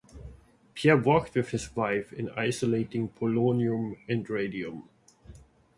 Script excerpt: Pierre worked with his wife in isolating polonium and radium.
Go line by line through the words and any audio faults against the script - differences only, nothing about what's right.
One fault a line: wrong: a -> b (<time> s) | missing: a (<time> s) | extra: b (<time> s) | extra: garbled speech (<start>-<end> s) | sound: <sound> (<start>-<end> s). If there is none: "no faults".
no faults